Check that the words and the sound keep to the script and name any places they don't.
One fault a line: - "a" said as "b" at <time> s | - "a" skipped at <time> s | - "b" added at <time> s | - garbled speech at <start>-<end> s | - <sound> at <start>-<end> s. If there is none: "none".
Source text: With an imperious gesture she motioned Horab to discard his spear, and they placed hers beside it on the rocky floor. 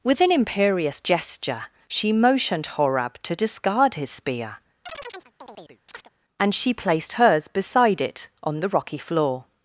- chirp at 4.8-6.1 s
- "they" said as "she" at 6.5 s